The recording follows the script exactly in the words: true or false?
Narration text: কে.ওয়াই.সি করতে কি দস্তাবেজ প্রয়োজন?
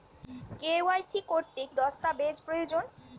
false